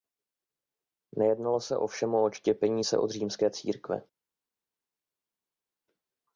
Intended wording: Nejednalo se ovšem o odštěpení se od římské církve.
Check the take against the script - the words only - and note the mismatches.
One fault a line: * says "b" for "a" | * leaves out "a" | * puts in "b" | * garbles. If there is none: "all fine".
all fine